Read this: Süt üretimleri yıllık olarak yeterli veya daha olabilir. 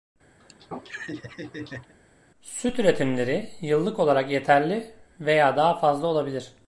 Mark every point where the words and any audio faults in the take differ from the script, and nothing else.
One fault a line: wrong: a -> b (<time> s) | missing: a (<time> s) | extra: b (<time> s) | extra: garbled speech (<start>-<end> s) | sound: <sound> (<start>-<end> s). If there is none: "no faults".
sound: laugh (0.4-1.9 s)
extra: fazla (5.8 s)